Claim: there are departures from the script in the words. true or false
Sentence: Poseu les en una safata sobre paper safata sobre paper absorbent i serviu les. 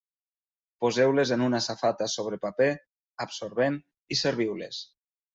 true